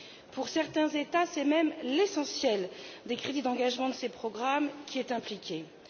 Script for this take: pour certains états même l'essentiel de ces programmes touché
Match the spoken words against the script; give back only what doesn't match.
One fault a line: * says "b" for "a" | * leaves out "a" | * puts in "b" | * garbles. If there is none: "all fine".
* puts in "c'est"
* puts in "des crédits d'engagement"
* puts in "qui est"